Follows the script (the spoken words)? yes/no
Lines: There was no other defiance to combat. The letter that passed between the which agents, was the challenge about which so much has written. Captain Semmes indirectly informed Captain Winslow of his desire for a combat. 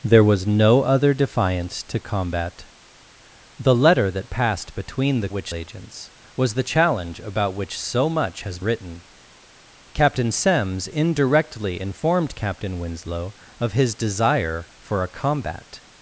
yes